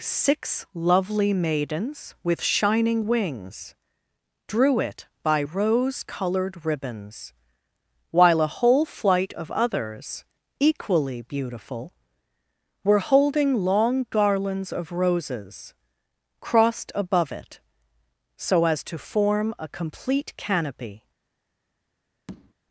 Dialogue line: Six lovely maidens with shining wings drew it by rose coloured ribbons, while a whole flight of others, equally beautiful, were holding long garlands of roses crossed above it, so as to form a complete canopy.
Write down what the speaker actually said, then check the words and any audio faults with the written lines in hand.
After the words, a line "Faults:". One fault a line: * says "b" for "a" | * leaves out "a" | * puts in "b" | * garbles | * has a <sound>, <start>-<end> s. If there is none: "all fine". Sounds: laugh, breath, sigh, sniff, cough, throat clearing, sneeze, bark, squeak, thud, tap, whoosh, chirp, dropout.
Six lovely maidens with shining wings drew it by rose coloured ribbons, while a whole flight of others, equally beautiful, were holding long garlands of roses crossed above it, so as to form a complete canopy.
Faults:
* has a tap, 22.3-22.5 s